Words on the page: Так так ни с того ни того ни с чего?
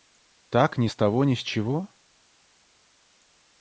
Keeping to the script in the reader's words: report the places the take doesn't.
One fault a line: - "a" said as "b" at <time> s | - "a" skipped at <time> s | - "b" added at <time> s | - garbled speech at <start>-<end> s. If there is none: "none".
- "так" skipped at 0.8 s
- "того ни" skipped at 1.3 s